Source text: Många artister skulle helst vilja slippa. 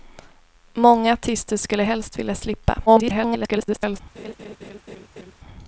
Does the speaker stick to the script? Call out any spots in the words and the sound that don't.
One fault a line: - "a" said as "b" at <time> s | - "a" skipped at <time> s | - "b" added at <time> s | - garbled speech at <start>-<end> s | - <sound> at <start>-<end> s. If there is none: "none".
- garbled speech at 2.9-4.0 s
- laugh at 4.2-5.3 s